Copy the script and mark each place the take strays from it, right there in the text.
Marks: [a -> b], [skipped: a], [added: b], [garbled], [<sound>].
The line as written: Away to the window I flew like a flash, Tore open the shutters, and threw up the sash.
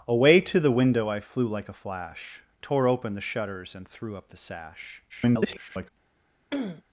Away to the window I flew like a flash, Tore open the shutters, and threw up the sash. [garbled] [throat clearing]